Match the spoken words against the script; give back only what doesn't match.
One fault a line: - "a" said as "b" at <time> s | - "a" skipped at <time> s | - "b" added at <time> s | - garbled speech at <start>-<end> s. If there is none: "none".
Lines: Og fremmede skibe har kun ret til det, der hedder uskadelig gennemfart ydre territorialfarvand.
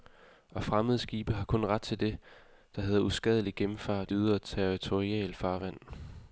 none